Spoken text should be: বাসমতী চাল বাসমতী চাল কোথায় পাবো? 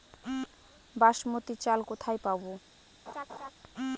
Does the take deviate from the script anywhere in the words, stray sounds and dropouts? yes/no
yes